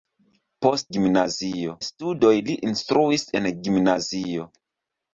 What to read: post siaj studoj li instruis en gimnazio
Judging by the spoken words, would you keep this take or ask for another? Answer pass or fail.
fail